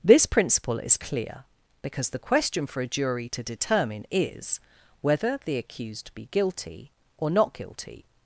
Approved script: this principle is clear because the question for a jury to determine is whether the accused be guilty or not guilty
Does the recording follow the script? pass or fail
pass